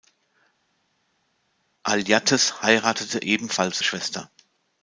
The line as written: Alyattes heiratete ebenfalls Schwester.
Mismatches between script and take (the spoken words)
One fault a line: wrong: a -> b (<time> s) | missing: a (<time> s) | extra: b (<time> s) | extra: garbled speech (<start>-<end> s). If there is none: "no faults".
no faults